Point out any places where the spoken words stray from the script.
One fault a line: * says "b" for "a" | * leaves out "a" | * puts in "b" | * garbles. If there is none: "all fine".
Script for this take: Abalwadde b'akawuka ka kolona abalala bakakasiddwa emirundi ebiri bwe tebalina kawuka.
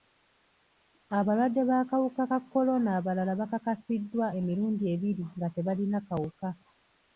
* says "nga" for "bwe"